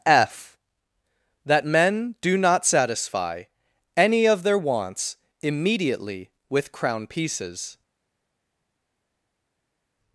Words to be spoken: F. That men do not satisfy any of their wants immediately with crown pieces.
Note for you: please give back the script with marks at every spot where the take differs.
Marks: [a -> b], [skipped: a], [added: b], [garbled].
F. That men do not satisfy any of their wants immediately with crown pieces.